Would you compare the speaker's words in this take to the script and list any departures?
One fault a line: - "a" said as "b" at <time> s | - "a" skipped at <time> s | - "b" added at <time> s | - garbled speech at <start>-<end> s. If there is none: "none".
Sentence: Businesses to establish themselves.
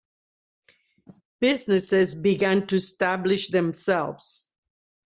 - "began" added at 2.1 s